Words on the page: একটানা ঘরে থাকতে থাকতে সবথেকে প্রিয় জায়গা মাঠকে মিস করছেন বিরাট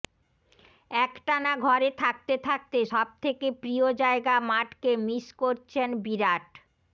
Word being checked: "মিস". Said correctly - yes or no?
yes